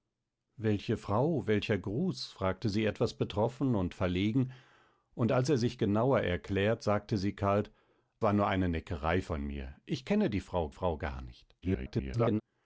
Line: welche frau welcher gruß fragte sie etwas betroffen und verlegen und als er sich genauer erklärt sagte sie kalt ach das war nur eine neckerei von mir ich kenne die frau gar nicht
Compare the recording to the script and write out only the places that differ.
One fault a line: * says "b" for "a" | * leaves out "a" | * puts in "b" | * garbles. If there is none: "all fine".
* leaves out "ach das"
* puts in "frau"
* garbles